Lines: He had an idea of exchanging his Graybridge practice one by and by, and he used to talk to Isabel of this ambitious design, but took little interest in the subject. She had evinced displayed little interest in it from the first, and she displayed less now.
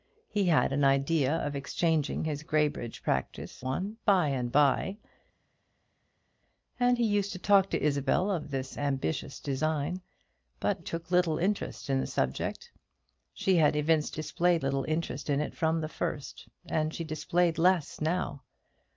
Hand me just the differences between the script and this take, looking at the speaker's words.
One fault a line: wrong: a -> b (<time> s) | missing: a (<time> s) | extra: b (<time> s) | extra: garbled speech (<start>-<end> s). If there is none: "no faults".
no faults